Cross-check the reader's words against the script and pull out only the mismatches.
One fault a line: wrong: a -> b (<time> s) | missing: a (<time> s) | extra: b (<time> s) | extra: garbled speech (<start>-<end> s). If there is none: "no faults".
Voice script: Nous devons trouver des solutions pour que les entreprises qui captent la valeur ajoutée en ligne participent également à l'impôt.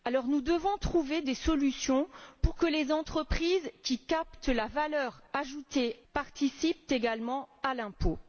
missing: en ligne (6.0 s)